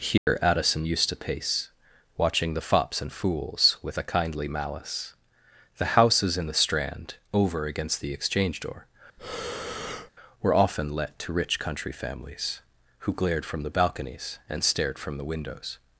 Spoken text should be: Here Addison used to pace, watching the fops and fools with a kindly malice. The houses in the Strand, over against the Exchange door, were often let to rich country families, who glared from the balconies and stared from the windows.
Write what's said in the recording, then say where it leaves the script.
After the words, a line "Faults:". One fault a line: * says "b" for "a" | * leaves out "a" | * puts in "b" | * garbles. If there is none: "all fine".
Here Addison used to pace, watching the fops and fools with a kindly malice. The houses in the Strand, over against the Exchange door, were often let to rich country families, who glared from the balconies and stared from the windows.
Faults:
all fine